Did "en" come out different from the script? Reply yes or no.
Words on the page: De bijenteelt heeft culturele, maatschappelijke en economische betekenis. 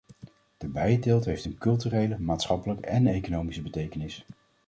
no